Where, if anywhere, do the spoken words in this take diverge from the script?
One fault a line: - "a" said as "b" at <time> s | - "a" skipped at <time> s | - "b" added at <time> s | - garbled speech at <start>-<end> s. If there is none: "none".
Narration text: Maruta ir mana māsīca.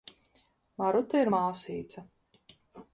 - "mana" skipped at 1.3 s